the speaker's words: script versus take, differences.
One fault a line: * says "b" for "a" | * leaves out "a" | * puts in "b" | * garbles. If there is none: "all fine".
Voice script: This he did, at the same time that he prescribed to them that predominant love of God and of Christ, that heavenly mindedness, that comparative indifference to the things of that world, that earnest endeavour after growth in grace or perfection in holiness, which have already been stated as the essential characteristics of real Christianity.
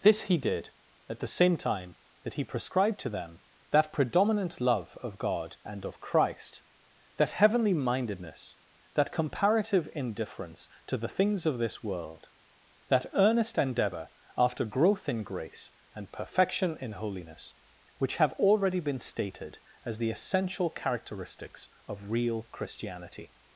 * says "this" for "that"
* says "and" for "or"